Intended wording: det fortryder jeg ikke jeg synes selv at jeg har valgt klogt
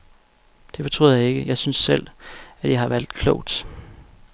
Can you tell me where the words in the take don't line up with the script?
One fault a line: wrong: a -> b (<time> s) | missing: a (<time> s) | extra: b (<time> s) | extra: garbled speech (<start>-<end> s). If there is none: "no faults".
no faults